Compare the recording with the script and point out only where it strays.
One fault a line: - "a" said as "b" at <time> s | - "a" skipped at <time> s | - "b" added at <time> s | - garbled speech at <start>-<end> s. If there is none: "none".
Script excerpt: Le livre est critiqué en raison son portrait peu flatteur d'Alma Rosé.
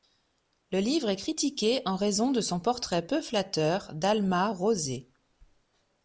- "de" added at 2.3 s